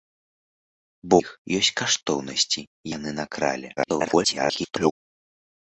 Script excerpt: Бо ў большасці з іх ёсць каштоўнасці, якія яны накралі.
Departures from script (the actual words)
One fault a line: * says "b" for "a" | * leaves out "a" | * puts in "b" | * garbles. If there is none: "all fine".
* leaves out "ў большасці з"
* leaves out "якія"
* garbles